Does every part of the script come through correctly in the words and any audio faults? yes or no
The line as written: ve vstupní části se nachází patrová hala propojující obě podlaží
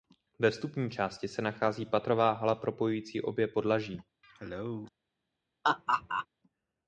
no